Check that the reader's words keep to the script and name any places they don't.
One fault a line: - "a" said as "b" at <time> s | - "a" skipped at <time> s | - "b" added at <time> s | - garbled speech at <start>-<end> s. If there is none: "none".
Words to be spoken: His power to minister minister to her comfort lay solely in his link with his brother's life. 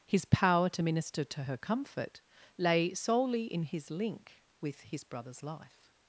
- "minister" skipped at 1.2 s